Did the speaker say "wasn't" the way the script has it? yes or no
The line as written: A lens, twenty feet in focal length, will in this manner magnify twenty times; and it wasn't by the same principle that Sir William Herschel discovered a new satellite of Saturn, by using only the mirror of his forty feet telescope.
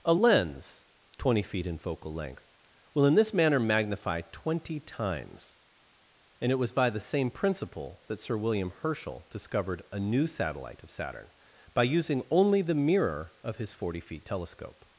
no